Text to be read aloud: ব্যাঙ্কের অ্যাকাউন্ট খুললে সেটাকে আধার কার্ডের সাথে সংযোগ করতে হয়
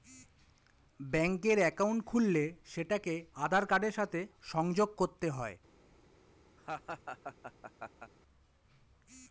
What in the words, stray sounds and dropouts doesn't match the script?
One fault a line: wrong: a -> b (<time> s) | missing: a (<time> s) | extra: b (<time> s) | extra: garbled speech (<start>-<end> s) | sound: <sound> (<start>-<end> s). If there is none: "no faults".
sound: laugh (6.6-8.1 s)